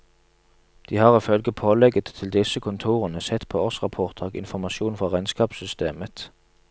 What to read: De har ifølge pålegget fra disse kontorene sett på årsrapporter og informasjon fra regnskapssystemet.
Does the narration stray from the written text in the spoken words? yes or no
yes